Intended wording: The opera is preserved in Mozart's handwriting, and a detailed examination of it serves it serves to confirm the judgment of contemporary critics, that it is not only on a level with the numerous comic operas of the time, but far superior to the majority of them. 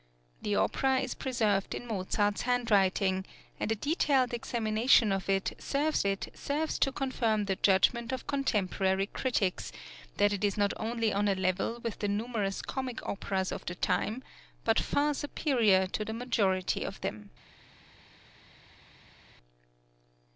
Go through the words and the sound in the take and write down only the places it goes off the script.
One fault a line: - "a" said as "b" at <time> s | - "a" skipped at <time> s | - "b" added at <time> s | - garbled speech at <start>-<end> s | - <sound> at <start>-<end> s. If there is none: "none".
none